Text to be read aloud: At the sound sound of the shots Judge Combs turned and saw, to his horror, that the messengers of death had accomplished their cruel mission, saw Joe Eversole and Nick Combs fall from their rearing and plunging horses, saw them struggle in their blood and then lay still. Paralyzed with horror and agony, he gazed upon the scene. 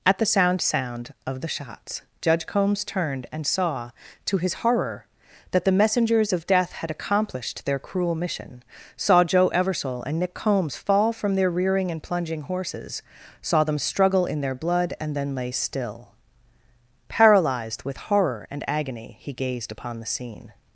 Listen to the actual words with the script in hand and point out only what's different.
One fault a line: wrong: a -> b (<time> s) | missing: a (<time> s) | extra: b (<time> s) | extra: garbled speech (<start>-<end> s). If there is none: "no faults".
no faults